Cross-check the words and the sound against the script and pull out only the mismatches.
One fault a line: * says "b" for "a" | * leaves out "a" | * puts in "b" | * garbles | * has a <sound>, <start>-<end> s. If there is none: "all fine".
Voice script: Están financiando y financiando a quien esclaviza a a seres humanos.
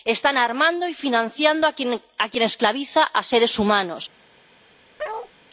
* says "armando" for "financiando"
* leaves out "a"
* has a bark, 5.0-5.3 s